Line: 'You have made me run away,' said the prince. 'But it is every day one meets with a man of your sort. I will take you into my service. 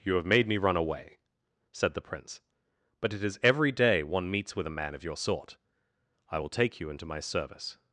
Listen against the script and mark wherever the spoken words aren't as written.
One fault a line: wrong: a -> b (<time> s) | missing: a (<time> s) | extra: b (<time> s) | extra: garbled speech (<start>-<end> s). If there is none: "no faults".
no faults